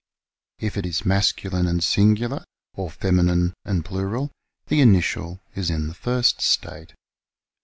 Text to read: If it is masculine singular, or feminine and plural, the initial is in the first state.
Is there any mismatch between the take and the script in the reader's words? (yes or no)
yes